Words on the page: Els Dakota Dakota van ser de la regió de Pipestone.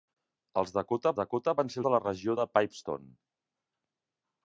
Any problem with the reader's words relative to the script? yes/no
no